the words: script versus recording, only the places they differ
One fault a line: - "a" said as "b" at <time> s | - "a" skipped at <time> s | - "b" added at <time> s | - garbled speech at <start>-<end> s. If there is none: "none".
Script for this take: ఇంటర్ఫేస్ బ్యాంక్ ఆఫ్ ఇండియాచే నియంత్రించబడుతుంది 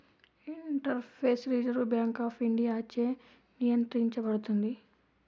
- "రిజర్వ్" added at 1.5 s